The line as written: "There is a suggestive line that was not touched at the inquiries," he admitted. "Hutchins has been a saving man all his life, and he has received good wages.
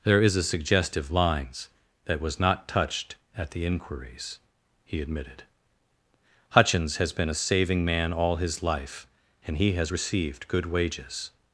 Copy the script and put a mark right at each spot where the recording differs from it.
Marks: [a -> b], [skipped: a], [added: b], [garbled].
"There is a suggestive [line -> lines] that was not touched at the inquiries," he admitted. "Hutchins has been a saving man all his life, and he has received good wages.